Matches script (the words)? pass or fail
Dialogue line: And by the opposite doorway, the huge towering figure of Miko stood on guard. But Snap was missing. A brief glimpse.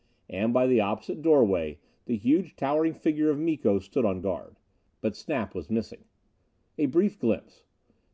pass